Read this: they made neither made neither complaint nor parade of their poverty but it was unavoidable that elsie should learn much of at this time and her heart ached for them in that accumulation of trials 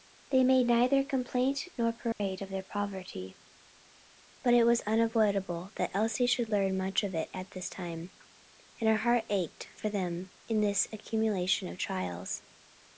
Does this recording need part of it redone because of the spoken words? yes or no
yes